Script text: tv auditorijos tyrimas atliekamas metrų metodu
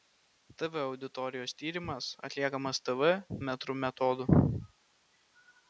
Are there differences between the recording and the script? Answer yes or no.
yes